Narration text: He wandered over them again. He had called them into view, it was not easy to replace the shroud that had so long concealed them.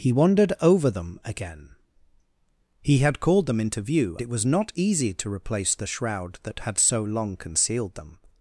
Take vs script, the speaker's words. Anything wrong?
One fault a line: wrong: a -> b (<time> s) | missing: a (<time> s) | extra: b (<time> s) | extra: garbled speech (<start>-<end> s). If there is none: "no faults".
no faults